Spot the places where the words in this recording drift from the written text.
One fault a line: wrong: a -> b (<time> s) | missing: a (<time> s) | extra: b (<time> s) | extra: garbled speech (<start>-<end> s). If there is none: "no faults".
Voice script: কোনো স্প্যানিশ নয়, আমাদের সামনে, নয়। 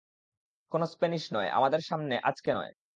extra: আজকে (2.2 s)